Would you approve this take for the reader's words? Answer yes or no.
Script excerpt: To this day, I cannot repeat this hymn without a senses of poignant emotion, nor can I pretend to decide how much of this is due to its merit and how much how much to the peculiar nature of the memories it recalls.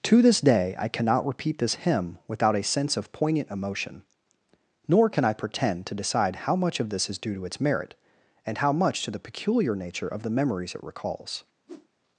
no